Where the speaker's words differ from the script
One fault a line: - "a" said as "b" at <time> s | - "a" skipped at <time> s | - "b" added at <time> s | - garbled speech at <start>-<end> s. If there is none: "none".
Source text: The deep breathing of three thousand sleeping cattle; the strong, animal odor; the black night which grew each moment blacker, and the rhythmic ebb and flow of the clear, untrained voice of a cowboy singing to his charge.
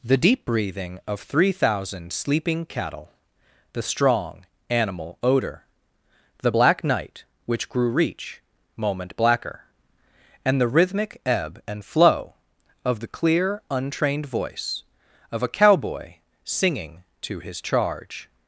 - "each" said as "reach" at 7.9 s